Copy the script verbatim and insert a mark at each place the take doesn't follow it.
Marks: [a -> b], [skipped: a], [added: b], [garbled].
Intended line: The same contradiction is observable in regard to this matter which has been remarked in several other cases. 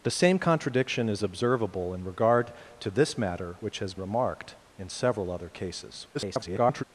The same contradiction is observable in regard to this matter which has [skipped: been] remarked in several other cases. [garbled]